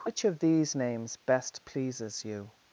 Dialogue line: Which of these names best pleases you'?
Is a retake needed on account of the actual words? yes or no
no